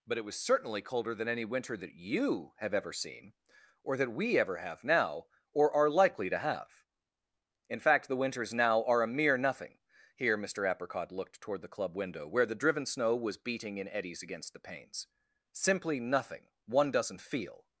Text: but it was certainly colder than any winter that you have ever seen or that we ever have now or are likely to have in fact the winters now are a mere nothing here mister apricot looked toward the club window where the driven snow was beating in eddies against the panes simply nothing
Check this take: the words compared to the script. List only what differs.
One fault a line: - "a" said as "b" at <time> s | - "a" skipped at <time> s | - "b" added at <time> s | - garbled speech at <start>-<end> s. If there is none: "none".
- "one doesn't feel" added at 16.6 s